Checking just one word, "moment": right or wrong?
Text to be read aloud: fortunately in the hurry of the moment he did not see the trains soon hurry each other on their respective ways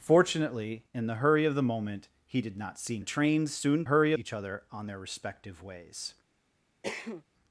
right